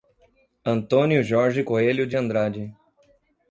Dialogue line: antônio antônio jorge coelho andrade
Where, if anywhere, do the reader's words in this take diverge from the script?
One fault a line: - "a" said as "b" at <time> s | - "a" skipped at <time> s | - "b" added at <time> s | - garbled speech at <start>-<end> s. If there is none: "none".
- "antônio" skipped at 1.2 s
- "de" added at 2.1 s